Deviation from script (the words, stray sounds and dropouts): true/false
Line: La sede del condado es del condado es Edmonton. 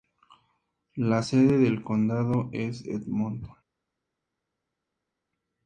true